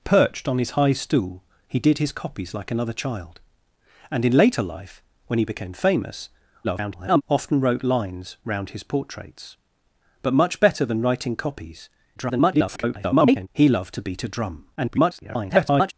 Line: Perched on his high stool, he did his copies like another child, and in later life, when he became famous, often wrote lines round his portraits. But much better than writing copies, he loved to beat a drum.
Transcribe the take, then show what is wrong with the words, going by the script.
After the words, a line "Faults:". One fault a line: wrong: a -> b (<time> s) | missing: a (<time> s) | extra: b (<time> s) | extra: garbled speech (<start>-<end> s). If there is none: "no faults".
Perched on his high stool, he did his copies like another child, and in later life, when he became famous, [garbled] often wrote lines round his portraits. But much better than writing copies, [garbled] he loved to beat a drum. [garbled]
Faults:
extra: garbled speech (6.6-7.2 s)
extra: garbled speech (12.2-13.5 s)
extra: garbled speech (14.8-15.9 s)